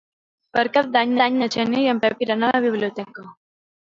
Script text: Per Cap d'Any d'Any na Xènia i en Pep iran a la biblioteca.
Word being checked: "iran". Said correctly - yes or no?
yes